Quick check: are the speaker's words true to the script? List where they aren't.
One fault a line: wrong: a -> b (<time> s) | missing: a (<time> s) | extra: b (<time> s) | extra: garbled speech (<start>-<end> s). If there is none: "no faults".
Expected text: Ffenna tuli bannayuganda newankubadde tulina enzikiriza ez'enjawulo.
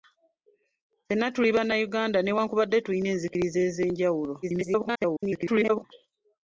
extra: garbled speech (4.4-5.8 s)